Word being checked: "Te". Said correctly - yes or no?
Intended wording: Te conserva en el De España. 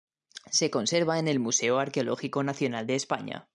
no